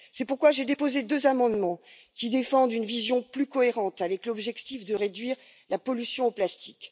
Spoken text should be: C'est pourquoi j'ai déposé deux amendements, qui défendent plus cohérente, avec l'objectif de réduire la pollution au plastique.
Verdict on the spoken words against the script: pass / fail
fail